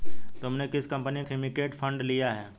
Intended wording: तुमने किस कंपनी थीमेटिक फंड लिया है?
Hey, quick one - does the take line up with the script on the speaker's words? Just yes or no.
yes